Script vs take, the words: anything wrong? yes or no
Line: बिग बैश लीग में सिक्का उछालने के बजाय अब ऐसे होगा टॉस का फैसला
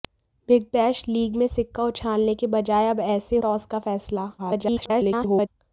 yes